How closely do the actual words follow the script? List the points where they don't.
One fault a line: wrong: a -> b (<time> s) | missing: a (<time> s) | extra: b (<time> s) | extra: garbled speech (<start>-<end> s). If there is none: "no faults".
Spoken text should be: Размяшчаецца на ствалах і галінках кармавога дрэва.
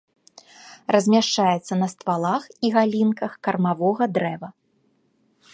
no faults